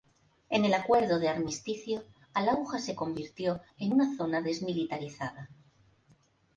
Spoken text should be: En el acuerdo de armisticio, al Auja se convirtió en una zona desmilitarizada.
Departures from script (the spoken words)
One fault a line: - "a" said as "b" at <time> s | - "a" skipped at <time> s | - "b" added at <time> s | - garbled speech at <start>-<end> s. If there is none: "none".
none